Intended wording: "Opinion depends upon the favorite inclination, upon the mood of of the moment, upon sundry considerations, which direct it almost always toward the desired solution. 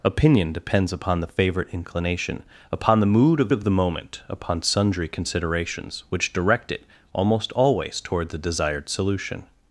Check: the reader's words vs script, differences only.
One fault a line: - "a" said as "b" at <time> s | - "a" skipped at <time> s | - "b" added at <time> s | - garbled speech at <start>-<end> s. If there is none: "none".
none